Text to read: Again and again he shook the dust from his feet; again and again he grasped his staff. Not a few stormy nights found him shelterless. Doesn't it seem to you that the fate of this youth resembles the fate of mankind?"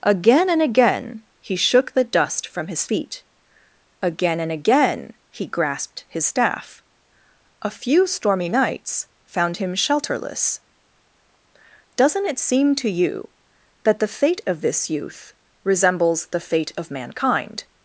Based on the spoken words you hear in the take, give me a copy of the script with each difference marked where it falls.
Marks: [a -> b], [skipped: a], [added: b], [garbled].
Again and again he shook the dust from his feet; again and again he grasped his staff. [skipped: Not] a few stormy nights found him shelterless. Doesn't it seem to you that the fate of this youth resembles the fate of mankind?"